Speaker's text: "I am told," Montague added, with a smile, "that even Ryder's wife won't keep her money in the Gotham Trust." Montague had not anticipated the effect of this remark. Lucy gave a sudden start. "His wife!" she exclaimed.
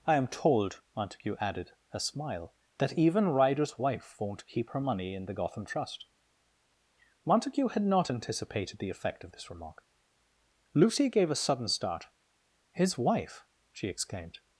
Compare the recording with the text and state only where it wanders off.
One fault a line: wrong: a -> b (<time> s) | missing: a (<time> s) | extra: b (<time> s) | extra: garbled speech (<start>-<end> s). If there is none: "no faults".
missing: with (1.7 s)